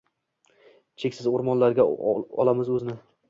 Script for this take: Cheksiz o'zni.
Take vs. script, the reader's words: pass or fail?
fail